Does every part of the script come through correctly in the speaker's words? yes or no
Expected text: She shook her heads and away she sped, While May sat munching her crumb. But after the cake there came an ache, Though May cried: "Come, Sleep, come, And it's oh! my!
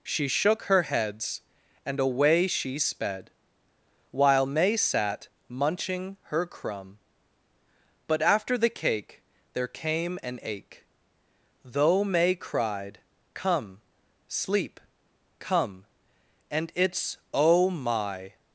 yes